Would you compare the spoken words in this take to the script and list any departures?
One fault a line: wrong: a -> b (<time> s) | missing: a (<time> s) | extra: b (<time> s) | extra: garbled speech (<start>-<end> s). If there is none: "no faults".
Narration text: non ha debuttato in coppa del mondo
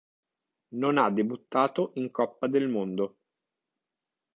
no faults